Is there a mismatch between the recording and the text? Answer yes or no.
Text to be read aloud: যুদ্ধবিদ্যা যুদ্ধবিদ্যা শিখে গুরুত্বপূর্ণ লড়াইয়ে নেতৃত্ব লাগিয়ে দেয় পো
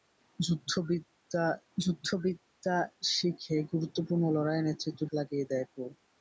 no